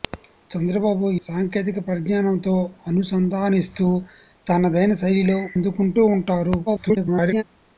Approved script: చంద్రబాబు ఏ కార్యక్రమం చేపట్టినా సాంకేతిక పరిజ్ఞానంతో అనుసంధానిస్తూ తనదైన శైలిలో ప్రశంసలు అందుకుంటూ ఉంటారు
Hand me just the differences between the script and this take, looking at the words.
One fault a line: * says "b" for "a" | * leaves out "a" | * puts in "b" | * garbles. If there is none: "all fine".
* leaves out "ఏ కార్యక్రమం చేపట్టినా"
* leaves out "ప్రశంసలు"
* garbles